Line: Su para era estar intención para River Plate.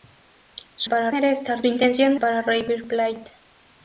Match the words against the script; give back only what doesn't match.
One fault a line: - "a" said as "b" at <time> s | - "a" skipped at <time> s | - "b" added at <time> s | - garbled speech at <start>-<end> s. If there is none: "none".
none